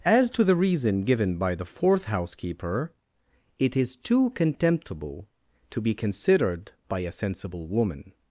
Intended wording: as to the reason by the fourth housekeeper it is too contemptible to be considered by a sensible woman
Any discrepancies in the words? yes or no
yes